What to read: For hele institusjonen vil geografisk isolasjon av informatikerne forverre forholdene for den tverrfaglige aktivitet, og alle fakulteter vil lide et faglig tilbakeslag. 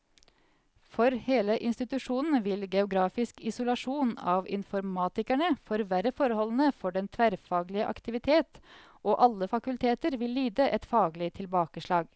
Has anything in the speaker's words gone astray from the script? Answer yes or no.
no